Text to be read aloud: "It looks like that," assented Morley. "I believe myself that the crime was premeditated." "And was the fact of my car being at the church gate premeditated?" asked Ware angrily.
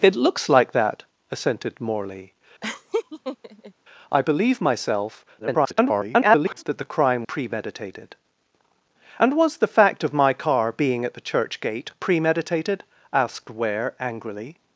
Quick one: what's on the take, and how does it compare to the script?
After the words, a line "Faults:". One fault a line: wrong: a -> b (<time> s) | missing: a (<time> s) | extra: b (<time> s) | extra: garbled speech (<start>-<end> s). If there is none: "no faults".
"It looks like that," assented Morley. "I believe myself [garbled] that the crime premeditated." "And was the fact of my car being at the church gate premeditated?" asked Ware angrily.
Faults:
extra: garbled speech (5.4-6.6 s)
missing: was (7.2 s)